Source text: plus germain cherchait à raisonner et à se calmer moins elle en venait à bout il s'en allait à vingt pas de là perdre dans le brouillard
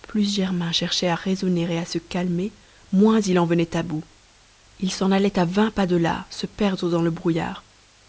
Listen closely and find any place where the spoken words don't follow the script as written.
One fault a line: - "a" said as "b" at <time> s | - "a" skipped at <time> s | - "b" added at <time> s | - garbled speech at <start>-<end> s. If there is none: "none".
- "elle" said as "il" at 3.2 s
- "se" added at 6.3 s